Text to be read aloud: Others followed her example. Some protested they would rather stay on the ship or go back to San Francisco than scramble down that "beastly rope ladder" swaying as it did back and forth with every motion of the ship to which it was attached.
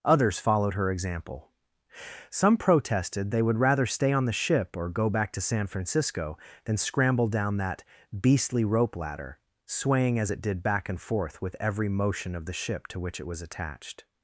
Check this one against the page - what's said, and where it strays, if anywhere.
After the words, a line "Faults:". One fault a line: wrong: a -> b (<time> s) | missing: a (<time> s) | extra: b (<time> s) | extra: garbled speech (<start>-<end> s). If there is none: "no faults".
Others followed her example. Some protested they would rather stay on the ship or go back to San Francisco than scramble down that "beastly rope ladder" swaying as it did back and forth with every motion of the ship to which it was attached.
Faults:
no faults